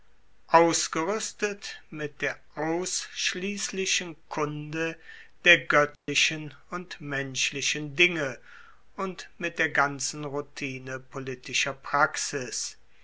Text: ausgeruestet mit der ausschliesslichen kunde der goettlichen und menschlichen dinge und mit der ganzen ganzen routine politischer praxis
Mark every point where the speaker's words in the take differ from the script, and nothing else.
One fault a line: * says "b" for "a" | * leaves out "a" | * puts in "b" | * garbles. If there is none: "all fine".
* leaves out "ganzen"